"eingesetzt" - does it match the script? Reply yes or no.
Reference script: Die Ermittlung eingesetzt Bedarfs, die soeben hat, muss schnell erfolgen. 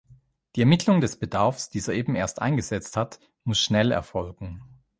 no